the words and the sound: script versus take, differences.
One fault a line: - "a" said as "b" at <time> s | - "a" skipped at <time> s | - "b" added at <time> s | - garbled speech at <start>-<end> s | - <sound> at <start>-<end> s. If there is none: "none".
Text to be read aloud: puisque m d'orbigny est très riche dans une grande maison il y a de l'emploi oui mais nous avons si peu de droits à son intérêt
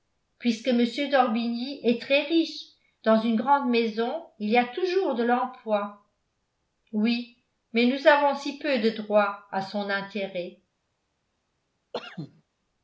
- "toujours" added at 4.6 s
- cough at 11.9-12.4 s